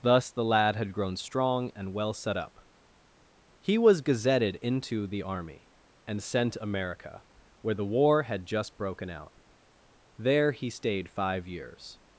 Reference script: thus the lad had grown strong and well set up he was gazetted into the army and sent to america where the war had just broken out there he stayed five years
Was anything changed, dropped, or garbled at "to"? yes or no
yes